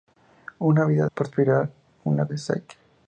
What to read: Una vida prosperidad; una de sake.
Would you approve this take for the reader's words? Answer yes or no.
yes